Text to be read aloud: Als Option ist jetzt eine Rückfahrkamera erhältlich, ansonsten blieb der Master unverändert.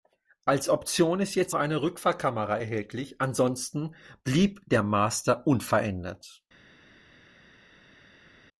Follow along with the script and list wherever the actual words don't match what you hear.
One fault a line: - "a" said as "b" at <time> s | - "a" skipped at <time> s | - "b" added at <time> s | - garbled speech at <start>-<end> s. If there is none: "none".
none